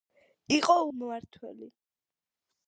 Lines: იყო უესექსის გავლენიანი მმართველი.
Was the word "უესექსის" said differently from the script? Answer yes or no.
yes